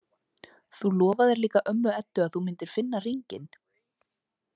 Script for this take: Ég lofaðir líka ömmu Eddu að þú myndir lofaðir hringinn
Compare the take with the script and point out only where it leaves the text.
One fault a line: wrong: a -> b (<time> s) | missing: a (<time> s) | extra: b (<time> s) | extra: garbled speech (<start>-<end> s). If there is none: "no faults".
wrong: Ég -> Þú (0.8 s)
wrong: lofaðir -> finna (2.8 s)